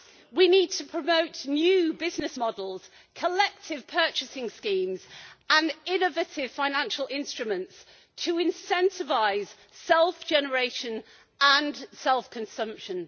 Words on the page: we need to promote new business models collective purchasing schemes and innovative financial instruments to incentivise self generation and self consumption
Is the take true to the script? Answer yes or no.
yes